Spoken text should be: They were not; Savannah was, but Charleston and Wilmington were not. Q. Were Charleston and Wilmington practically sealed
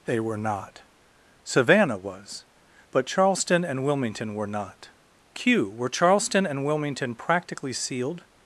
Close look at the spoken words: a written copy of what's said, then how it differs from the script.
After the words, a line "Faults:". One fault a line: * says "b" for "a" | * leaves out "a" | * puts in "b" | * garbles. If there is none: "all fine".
They were not; Savannah was, but Charleston and Wilmington were not. Q. Were Charleston and Wilmington practically sealed
Faults:
all fine